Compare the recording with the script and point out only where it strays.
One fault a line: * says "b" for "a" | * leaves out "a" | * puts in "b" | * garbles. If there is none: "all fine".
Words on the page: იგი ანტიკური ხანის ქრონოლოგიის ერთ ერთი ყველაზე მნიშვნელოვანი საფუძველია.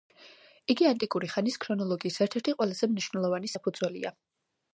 all fine